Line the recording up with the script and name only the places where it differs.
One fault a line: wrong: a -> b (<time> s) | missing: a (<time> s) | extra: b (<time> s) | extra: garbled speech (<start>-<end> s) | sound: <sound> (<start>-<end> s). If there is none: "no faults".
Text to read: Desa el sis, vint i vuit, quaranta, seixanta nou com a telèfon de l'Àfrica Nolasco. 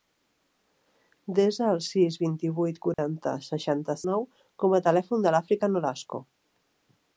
sound: dropout (2.9-3.0 s)